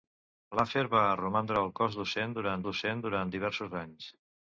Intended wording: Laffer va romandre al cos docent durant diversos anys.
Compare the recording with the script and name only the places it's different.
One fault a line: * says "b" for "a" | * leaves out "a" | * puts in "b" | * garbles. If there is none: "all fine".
* puts in "docent durant"